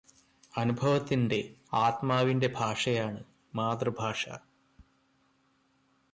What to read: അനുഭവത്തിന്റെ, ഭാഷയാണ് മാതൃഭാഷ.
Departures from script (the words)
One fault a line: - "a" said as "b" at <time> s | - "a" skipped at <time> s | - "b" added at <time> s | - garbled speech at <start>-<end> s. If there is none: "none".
- "ആത്മാവിന്റെ" added at 1.7 s